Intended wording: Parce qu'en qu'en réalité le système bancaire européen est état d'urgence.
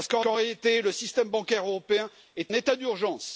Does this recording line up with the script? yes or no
yes